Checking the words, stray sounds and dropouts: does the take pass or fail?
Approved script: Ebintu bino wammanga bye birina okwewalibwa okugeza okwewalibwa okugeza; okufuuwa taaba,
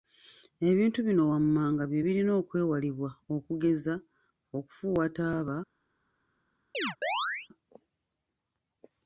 fail